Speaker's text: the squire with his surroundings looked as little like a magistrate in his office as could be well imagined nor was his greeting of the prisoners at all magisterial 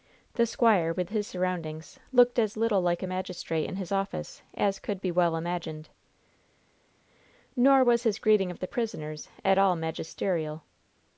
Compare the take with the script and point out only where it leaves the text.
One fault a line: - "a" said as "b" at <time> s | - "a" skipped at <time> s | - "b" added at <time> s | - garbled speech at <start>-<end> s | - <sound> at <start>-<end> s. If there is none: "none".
none